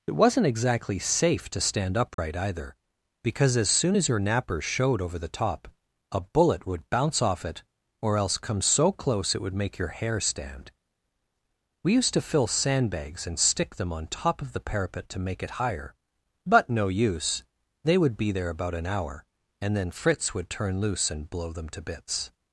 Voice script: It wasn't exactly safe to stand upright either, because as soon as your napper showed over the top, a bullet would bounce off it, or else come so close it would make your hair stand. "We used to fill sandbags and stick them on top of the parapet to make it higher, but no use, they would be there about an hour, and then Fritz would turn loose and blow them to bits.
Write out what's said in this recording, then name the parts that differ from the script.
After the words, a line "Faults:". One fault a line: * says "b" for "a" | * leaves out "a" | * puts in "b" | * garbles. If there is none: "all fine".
It wasn't exactly safe to stand upright either, because as soon as your napper showed over the top, a bullet would bounce off it, or else come so close it would make your hair stand. "We used to fill sandbags and stick them on top of the parapet to make it higher, but no use, they would be there about an hour, and then Fritz would turn loose and blow them to bits.
Faults:
all fine